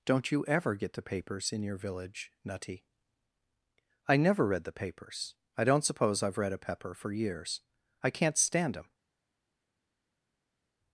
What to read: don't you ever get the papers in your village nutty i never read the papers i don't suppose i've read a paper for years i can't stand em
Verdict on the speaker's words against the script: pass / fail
fail